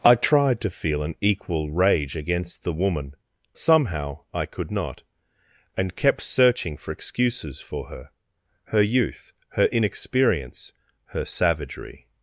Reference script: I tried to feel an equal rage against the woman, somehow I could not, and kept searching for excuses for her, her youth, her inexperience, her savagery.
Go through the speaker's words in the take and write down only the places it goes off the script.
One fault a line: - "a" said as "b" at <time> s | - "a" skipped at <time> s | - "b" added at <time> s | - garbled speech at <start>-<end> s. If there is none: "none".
none